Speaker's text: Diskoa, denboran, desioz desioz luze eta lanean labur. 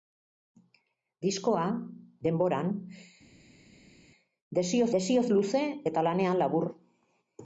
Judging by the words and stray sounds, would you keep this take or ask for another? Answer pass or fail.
pass